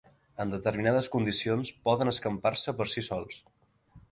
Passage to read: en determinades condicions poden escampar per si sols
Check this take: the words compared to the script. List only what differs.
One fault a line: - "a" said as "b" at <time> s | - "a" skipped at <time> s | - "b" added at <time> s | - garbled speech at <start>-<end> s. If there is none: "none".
- "se" added at 2.6 s